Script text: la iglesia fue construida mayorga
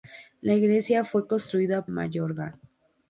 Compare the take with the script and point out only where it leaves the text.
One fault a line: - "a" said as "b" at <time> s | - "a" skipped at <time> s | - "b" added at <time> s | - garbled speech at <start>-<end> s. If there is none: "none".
none